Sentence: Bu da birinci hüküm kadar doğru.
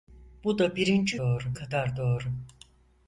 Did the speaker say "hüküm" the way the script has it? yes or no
no